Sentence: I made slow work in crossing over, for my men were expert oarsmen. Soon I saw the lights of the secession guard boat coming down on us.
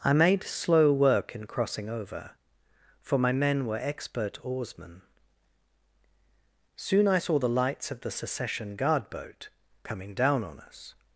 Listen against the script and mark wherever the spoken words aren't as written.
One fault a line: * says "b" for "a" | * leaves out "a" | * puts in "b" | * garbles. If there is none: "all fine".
all fine